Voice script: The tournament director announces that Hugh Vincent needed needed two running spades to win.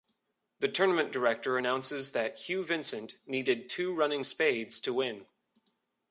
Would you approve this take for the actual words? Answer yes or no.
no